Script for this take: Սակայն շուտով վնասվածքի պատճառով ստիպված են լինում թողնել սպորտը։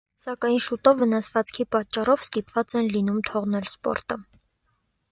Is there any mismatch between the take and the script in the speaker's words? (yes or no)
no